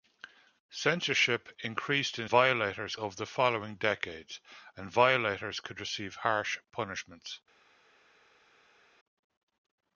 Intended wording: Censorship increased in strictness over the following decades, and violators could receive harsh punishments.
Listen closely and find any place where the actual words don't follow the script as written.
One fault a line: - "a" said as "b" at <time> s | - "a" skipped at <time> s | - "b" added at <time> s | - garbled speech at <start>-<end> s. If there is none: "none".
- "strictness" said as "violators" at 2.2 s